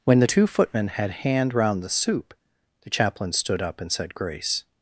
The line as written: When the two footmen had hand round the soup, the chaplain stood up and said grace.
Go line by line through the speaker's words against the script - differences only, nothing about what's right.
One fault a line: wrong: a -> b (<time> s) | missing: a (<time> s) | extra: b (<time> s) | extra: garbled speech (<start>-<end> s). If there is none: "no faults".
no faults